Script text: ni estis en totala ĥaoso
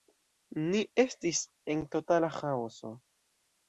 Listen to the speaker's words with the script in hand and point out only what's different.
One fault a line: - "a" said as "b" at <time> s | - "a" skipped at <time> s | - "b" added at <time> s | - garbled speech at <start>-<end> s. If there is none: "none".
none